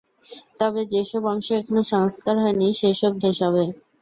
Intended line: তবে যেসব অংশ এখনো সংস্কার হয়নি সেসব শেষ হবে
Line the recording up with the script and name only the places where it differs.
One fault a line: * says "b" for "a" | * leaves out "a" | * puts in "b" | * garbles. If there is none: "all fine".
all fine